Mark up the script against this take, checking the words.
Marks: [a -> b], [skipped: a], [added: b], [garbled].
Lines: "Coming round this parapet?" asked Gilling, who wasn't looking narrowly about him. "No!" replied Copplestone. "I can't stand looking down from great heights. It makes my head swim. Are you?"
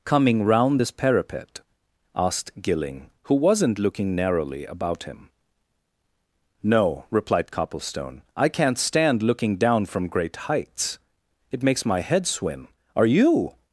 "Coming round this parapet?" asked Gilling, who wasn't looking narrowly about him. "No!" replied Copplestone. "I can't stand looking down from great heights. It makes my head swim. Are you?"